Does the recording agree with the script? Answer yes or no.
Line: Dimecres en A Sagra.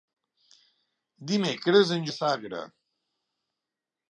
yes